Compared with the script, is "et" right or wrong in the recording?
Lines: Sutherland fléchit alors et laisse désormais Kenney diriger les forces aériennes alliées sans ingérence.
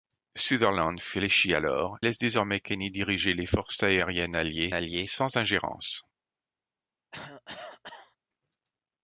wrong